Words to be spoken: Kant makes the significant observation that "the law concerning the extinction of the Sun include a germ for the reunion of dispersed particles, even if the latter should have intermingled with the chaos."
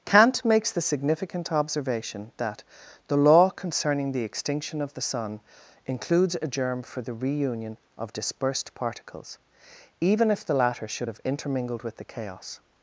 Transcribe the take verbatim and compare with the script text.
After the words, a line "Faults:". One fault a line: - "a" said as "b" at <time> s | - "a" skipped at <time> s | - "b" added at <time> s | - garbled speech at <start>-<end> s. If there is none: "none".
Kant makes the significant observation that "the law concerning the extinction of the Sun includes a germ for the reunion of dispersed particles, even if the latter should have intermingled with the chaos."
Faults:
- "include" said as "includes" at 5.8 s